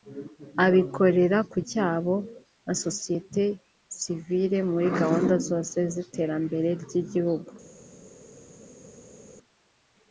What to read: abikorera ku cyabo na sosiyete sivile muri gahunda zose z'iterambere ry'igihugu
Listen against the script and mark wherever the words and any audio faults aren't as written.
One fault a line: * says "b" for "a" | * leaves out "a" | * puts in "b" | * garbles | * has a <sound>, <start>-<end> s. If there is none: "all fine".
all fine